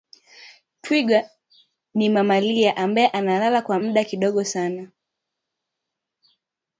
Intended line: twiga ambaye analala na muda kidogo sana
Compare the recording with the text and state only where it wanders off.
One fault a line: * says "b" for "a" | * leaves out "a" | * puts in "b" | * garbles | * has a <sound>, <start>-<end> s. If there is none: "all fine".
* puts in "ni mamalia"
* says "kwa" for "na"